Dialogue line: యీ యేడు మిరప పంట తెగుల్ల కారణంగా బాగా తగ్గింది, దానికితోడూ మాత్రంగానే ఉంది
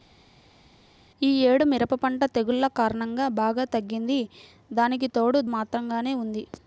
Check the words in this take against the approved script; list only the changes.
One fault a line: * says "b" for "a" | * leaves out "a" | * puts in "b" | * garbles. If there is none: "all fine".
all fine